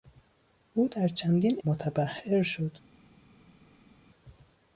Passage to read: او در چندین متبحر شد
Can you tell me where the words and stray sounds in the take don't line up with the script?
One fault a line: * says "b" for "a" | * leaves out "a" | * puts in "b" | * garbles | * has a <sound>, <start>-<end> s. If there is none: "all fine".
all fine